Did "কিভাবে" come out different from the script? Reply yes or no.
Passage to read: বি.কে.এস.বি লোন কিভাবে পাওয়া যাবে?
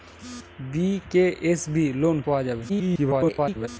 yes